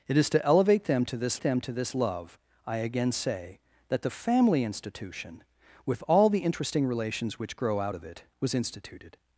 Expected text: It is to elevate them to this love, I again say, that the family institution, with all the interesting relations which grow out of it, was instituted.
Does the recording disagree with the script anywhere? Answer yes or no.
yes